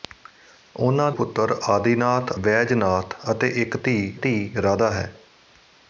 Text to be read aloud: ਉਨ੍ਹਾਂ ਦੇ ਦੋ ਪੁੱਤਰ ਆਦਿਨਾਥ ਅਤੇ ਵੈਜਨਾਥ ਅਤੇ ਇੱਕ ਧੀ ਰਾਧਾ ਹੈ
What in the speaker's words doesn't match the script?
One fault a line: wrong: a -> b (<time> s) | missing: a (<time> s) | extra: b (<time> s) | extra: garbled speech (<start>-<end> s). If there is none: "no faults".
missing: ਦੇ ਦੋ (1.1 s)
missing: ਅਤੇ (2.3 s)
extra: ਧੀ (4.1 s)